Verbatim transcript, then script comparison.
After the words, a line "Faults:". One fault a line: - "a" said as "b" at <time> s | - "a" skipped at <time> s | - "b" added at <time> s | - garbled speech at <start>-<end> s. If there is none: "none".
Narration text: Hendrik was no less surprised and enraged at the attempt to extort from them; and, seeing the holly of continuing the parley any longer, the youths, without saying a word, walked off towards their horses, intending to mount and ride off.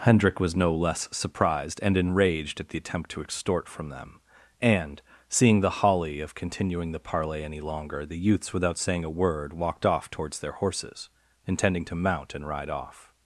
Hendrik was no less surprised and enraged at the attempt to extort from them; and, seeing the holly of continuing the parley any longer, the youths, without saying a word, walked off towards their horses, intending to mount and ride off.
Faults:
none